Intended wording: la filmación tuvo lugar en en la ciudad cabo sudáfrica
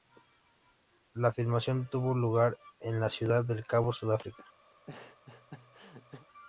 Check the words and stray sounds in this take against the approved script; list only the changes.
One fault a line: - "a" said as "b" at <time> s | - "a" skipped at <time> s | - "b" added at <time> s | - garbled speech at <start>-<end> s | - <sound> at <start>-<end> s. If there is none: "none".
- "en" skipped at 3.0 s
- "del" added at 3.5 s
- laugh at 4.7-6.3 s